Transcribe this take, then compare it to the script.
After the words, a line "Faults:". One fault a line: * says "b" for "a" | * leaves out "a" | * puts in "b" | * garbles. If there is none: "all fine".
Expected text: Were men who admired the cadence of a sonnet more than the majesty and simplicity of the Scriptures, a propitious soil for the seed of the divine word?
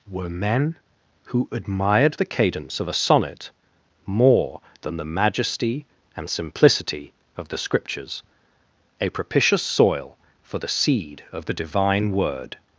Were men who admired the cadence of a sonnet more than the majesty and simplicity of the Scriptures, a propitious soil for the seed of the divine word?
Faults:
all fine